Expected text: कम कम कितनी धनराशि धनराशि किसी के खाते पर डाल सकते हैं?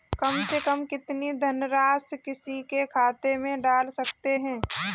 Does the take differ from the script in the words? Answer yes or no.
yes